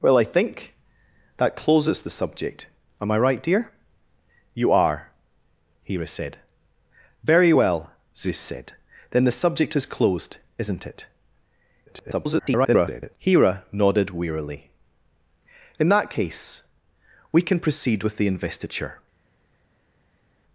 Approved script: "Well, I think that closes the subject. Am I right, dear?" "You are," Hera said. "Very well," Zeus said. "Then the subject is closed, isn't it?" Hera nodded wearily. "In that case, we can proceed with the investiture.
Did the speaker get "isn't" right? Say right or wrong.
right